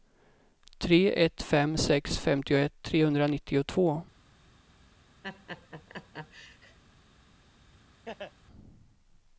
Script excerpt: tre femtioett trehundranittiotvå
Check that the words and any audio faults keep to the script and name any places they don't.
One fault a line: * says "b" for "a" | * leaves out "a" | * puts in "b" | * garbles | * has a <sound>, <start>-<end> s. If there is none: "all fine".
* puts in "ett fem sex"
* has a laugh, 5.2-6.8 s
* has a laugh, 8.0-8.3 s